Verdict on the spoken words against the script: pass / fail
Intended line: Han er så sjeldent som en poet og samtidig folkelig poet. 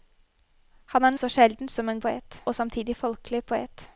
pass